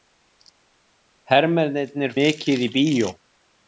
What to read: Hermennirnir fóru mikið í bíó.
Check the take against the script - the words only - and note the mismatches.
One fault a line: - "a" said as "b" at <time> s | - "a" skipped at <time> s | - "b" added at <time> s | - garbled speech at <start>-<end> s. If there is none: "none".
- "fóru" skipped at 2.2 s